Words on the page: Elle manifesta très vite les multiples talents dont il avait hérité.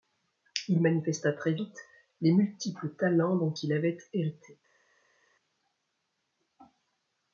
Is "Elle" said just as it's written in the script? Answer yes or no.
no